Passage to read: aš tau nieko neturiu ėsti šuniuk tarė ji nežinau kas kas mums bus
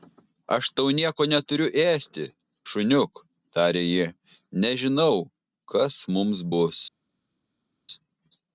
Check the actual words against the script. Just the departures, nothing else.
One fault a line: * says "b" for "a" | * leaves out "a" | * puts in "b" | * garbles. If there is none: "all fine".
* leaves out "kas"